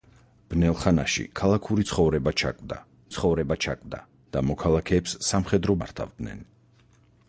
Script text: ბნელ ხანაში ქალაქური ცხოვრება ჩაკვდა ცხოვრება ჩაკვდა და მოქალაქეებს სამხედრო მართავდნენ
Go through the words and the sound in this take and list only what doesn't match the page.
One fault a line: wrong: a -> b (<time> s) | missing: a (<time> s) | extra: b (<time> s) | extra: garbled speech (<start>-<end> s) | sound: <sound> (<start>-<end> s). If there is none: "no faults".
no faults